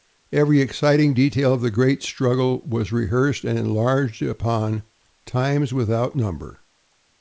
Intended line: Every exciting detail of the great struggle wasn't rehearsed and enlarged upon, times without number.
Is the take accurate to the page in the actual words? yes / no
no